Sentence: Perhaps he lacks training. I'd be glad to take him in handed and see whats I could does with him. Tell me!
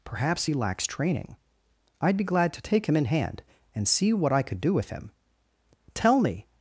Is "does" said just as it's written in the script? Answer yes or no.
no